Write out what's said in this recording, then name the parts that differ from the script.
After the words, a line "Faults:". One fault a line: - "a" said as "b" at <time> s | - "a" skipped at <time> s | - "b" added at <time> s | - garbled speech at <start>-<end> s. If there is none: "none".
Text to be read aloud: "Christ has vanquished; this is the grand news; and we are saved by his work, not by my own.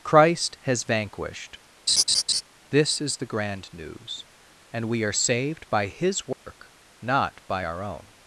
"Christ has vanquished; this is the grand news; and we are saved by his work, not by our own.
Faults:
- "my" said as "our" at 7.6 s